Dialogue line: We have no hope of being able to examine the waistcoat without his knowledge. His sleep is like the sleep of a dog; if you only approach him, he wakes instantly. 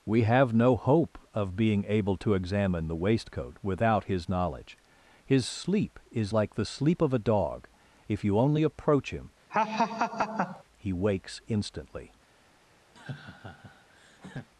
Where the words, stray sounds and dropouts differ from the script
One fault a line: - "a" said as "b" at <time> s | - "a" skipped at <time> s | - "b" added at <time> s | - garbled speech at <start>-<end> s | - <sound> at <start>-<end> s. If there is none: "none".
- laugh at 9.5-10.6 s
- laugh at 13.0-14.5 s